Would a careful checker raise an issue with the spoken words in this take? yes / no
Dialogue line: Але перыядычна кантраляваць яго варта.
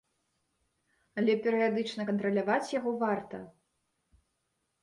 no